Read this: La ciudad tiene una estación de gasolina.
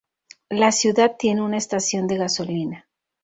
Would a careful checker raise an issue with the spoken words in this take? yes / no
no